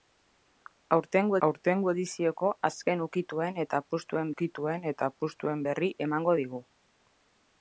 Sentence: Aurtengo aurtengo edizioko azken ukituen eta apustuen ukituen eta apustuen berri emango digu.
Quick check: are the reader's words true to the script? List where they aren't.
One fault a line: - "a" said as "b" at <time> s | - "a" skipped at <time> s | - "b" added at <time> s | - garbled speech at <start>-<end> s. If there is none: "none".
none